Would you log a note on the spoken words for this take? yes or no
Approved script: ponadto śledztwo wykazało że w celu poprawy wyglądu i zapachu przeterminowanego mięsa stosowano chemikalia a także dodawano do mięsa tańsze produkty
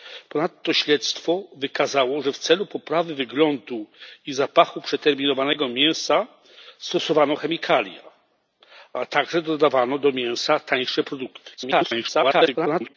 yes